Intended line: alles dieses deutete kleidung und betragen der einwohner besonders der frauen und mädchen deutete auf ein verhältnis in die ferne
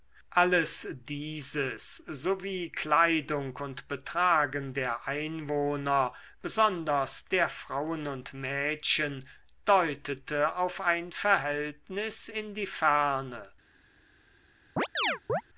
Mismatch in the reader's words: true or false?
true